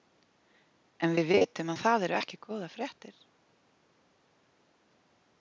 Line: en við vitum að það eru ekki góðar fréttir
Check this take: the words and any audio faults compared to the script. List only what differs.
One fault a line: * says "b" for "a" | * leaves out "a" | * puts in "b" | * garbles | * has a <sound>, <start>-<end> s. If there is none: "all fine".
all fine